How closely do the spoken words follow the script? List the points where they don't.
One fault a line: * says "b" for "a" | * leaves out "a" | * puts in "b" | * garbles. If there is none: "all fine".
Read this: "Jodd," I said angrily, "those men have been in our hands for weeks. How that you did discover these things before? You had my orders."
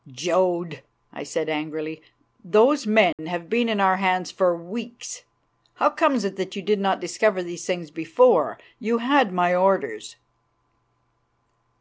* puts in "comes it"
* puts in "not"